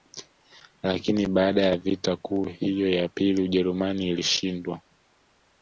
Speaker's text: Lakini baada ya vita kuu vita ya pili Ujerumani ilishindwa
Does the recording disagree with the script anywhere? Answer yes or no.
yes